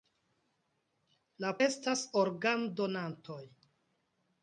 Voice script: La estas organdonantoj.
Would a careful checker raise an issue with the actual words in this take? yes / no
no